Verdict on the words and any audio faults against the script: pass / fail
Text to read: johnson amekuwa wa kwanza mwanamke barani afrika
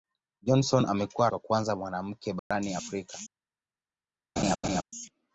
fail